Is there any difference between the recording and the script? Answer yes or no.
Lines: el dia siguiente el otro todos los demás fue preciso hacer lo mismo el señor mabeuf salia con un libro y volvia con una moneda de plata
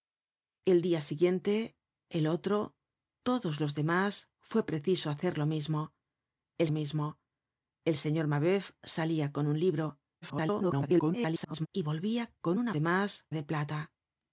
yes